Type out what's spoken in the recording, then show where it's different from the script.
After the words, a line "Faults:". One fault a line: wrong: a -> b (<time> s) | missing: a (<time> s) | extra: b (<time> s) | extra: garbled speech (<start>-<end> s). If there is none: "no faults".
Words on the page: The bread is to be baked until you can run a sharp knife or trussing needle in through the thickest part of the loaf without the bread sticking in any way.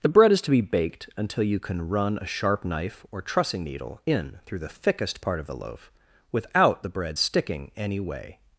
The bread is to be baked until you can run a sharp knife or trussing needle in through the thickest part of the loaf without the bread sticking any way.
Faults:
missing: in (7.7 s)